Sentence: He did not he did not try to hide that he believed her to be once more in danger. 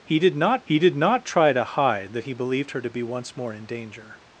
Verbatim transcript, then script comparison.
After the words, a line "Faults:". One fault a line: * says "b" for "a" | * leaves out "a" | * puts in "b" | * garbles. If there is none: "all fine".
He did not he did not try to hide that he believed her to be once more in danger.
Faults:
all fine